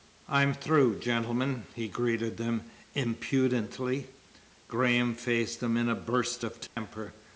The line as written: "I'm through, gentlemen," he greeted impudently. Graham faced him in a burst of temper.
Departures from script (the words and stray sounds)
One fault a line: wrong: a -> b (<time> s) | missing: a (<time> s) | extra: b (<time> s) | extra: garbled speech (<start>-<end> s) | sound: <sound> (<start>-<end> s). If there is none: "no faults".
extra: them (2.4 s)
sound: dropout (6.7-6.8 s)